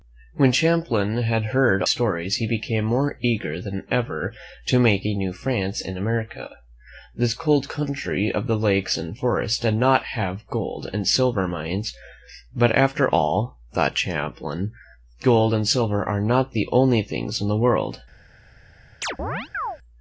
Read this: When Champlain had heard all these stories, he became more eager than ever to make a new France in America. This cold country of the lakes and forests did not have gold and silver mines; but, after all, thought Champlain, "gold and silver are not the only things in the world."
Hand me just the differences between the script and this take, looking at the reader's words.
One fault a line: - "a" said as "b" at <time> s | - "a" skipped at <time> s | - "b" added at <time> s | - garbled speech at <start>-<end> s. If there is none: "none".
- "all these" skipped at 1.8 s